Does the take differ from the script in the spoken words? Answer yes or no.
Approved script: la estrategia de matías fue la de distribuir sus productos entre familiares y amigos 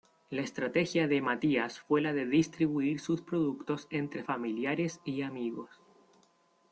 no